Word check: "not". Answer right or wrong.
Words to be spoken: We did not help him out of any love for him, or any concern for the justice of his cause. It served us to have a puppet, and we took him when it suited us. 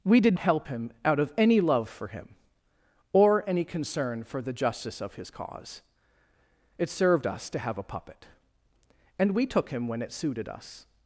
wrong